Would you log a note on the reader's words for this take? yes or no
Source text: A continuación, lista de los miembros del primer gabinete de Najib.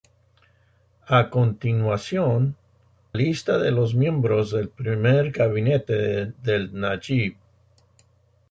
no